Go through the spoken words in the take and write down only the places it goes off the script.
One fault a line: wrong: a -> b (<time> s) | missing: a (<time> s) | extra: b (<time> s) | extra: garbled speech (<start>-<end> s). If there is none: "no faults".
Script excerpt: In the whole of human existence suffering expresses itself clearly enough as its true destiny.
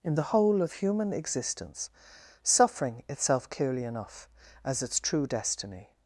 missing: expresses (3.0 s)